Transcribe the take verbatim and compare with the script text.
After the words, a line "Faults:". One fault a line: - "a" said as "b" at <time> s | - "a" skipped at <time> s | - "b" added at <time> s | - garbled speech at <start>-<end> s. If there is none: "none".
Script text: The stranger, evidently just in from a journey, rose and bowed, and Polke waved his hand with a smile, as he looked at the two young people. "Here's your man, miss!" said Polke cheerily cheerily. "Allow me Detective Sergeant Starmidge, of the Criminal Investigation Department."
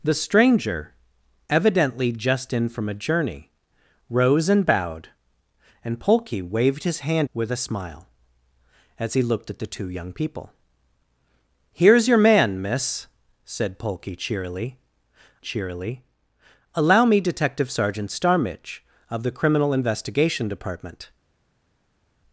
The stranger, evidently just in from a journey, rose and bowed, and Polke waved his hand with a smile, as he looked at the two young people. "Here's your man, miss!" said Polke cheerily cheerily. "Allow me Detective Sergeant Starmidge, of the Criminal Investigation Department."
Faults:
none